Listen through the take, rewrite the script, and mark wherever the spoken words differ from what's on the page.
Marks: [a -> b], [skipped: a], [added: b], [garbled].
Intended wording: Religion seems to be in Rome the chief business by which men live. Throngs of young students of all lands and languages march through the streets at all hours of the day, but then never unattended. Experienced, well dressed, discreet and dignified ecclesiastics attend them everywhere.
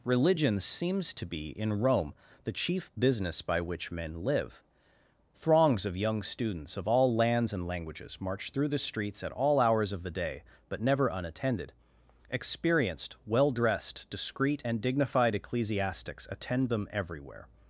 Religion seems to be in Rome the chief business by which men live. Throngs of young students of all lands and languages march through the streets at all hours of the day, but [skipped: then] never unattended. Experienced, well dressed, discreet and dignified ecclesiastics attend them everywhere.